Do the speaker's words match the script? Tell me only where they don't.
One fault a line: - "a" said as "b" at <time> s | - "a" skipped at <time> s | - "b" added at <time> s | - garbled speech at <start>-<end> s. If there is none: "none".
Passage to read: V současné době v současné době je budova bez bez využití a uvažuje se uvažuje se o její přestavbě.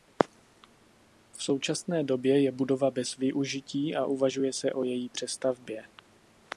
- "v současné době" skipped at 2.4 s
- "bez" skipped at 3.1 s
- "uvažuje se" skipped at 4.7 s